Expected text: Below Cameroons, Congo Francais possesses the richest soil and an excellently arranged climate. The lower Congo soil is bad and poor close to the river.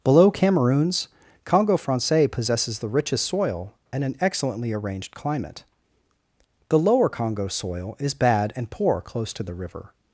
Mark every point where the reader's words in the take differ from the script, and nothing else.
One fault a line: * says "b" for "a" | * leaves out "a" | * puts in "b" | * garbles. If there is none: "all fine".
all fine